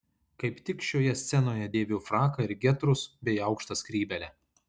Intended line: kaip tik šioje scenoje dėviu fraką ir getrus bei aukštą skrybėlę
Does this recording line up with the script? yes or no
yes